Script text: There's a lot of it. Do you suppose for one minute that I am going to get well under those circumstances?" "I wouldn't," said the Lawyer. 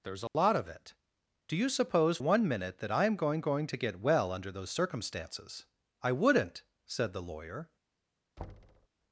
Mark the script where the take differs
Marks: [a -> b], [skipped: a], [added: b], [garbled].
There's a lot of it. Do you suppose [skipped: for] one minute that I am going [added: going] to get well under those circumstances?" "I wouldn't," said the Lawyer.